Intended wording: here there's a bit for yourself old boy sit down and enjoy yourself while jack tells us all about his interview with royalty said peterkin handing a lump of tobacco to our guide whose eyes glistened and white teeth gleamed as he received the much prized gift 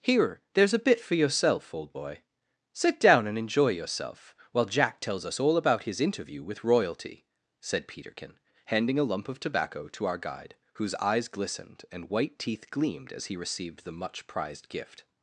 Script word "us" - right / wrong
right